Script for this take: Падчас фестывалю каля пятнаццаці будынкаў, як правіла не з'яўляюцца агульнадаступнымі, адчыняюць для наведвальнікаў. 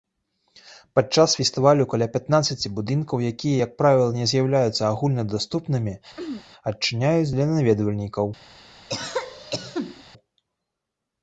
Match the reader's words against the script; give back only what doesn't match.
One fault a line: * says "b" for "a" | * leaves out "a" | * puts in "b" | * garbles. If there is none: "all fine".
* puts in "якія"